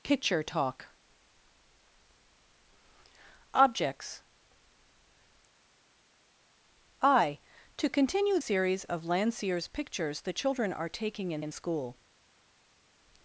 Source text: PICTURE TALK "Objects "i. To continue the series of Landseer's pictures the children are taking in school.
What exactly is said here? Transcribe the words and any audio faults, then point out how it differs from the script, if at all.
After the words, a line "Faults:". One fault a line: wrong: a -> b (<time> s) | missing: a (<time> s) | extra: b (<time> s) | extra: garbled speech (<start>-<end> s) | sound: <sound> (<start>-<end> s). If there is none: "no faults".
PICTURE TALK "Objects "i. To continue series of Landseer's pictures the children are taking in in school.
Faults:
missing: the (8.4 s)
extra: in (11.4 s)